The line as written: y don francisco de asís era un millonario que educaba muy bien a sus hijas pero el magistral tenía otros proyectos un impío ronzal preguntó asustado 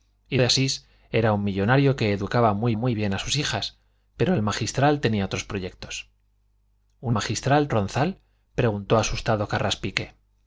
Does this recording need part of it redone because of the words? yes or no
yes